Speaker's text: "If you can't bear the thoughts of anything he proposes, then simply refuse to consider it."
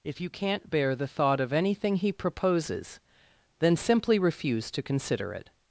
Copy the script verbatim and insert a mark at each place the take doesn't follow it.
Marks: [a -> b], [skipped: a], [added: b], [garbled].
"If you can't bear the [thoughts -> thought] of anything he proposes, then simply refuse to consider it."